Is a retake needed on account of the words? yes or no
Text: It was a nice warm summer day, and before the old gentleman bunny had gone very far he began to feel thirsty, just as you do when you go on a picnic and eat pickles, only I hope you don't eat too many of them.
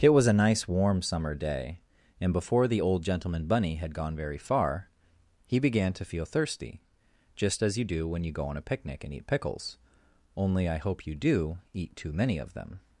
yes